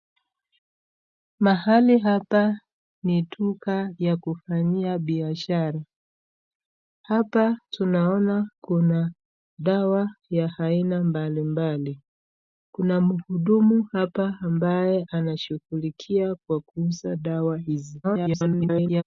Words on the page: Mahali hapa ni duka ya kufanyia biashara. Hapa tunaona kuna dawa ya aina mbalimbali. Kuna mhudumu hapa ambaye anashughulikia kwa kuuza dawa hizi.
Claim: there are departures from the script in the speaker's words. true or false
true